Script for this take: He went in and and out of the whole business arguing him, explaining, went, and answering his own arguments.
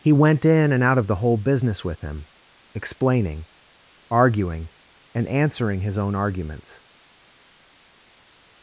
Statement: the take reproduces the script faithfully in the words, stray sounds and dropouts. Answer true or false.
false